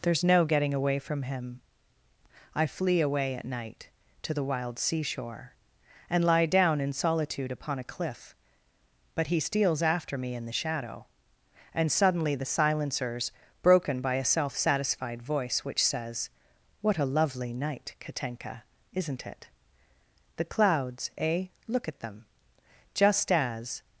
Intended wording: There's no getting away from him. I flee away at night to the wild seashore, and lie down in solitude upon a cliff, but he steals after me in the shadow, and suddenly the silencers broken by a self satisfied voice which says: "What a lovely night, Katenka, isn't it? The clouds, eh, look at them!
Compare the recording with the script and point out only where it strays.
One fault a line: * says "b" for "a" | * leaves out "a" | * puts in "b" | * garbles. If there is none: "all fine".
* puts in "Just as"